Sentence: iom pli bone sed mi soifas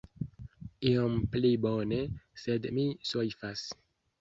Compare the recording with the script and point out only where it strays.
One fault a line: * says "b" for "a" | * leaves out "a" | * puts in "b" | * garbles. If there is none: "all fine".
all fine